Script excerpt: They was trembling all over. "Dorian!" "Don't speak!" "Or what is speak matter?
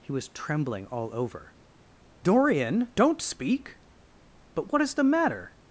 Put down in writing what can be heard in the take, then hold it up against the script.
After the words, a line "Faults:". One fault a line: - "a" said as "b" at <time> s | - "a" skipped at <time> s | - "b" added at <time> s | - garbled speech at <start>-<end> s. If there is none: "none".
He was trembling all over. "Dorian!" "Don't speak!" "But what is the matter?
Faults:
- "They" said as "He" at 0.0 s
- "Or" said as "But" at 4.5 s
- "speak" said as "the" at 4.9 s